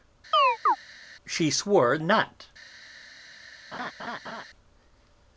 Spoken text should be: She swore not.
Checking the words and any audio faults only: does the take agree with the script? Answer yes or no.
no